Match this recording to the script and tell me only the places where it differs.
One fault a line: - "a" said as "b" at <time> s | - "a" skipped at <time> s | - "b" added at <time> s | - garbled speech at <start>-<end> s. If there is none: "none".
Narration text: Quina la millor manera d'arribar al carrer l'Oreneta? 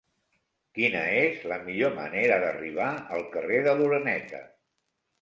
- "és" added at 1.2 s
- "de" added at 3.7 s